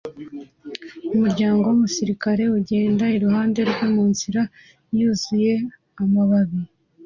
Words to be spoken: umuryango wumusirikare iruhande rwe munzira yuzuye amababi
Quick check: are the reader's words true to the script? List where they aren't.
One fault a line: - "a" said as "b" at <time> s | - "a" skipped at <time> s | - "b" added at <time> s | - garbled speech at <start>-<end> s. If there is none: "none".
- "ugenda" added at 2.6 s